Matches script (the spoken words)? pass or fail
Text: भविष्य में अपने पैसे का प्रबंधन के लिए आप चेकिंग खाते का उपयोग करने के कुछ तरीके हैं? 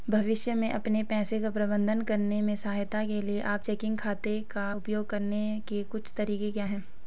fail